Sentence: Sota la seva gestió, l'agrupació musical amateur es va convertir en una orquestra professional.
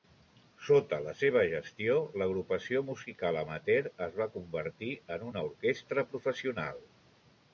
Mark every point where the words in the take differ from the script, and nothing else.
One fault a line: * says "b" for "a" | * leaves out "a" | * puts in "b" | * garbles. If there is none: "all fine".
all fine